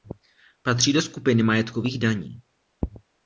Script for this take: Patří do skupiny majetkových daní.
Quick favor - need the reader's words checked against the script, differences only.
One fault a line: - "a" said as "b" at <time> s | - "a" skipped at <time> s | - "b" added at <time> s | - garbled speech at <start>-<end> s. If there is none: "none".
none